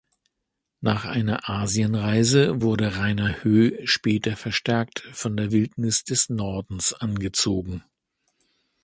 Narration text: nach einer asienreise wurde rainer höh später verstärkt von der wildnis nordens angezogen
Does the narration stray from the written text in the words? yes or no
yes